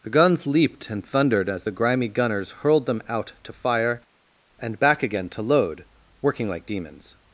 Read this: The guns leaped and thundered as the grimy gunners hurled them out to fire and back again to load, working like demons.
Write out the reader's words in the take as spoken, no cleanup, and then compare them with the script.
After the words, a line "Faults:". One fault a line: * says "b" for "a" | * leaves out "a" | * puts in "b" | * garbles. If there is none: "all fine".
The guns leaped and thundered as the grimy gunners hurled them out to fire and back again to load, working like demons.
Faults:
all fine